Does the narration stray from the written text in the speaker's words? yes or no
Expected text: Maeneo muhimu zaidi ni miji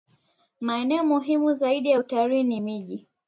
yes